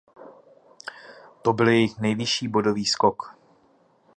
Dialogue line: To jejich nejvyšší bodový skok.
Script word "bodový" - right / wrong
right